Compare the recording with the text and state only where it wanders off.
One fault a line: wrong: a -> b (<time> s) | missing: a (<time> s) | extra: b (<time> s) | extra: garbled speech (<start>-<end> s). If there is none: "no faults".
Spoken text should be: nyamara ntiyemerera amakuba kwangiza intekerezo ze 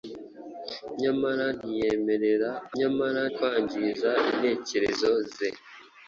wrong: amakuba -> nyamara (2.8 s)